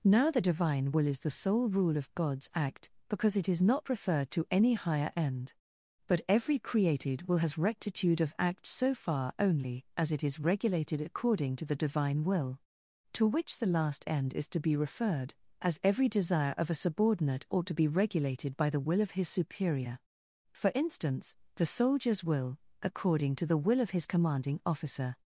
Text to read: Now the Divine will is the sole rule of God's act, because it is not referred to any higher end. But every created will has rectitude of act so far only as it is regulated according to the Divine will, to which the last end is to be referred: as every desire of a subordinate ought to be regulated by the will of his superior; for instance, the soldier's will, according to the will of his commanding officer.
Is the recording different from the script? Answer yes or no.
no